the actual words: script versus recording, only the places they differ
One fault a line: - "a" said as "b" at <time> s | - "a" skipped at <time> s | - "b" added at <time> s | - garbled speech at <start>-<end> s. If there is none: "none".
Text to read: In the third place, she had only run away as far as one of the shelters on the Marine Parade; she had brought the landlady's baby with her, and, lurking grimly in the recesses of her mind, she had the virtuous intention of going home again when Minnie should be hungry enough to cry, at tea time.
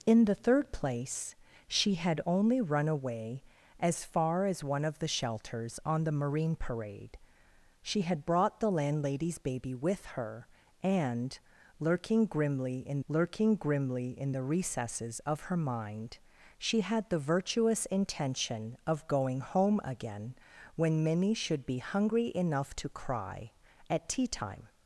- "lurking grimly in" added at 13.1 s